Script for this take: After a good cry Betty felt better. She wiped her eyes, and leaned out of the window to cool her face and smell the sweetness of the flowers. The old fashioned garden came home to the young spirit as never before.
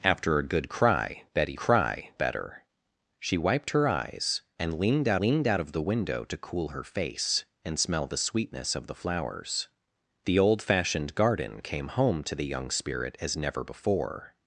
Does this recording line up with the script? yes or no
no